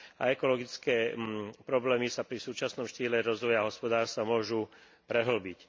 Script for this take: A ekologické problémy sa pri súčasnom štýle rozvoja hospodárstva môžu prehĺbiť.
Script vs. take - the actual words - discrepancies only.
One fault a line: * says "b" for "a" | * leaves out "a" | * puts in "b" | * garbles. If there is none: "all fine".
all fine